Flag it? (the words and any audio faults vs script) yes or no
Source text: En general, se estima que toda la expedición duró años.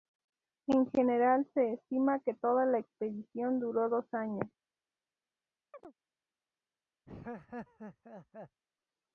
yes